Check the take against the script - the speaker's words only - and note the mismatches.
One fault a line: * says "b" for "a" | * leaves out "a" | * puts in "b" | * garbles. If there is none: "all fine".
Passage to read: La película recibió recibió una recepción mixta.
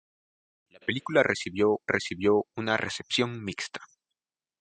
all fine